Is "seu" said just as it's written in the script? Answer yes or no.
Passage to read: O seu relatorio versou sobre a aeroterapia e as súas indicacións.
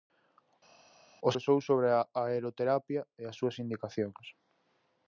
no